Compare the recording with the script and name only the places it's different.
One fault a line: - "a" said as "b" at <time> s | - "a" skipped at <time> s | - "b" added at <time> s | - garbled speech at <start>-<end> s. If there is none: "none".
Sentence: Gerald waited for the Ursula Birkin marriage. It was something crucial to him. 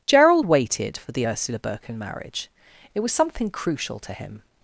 none